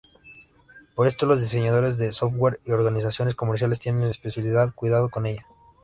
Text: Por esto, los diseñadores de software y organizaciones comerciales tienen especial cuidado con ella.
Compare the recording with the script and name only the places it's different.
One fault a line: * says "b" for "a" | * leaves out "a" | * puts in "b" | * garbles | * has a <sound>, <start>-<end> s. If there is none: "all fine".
all fine